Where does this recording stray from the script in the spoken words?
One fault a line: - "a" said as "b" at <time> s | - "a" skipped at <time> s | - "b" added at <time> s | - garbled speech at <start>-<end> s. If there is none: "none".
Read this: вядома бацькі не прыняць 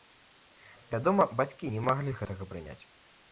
- "маглі гэтага" added at 1.9 s